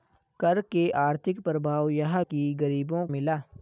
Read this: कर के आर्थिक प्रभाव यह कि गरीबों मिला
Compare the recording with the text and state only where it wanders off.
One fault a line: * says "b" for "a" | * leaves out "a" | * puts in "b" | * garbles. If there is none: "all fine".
all fine